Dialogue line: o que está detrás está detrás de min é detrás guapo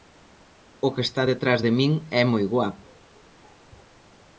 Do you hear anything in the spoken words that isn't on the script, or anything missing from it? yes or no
yes